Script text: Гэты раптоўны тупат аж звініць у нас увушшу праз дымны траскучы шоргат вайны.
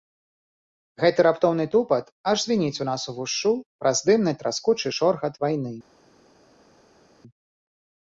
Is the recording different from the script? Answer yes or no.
no